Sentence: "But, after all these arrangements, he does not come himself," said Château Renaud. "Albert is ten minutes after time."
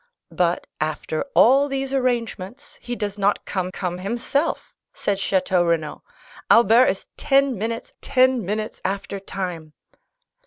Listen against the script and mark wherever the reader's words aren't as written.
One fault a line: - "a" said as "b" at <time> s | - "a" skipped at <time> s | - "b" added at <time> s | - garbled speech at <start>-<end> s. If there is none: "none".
- "come" added at 3.7 s
- "ten minutes" added at 8.0 s